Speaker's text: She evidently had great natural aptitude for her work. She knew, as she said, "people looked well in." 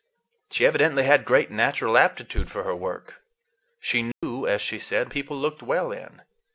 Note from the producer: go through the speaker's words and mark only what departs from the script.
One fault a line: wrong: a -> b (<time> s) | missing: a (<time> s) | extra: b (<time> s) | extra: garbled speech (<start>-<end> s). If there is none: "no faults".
no faults